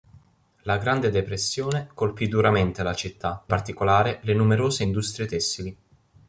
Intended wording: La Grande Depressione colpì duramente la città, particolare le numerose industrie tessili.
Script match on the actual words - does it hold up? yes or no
yes